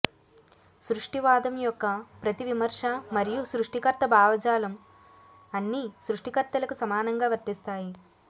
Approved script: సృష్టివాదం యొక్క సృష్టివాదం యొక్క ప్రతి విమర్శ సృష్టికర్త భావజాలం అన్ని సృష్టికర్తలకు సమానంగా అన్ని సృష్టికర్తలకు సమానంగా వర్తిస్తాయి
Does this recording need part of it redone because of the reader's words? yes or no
yes